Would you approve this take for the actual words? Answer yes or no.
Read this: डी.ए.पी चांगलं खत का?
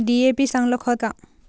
yes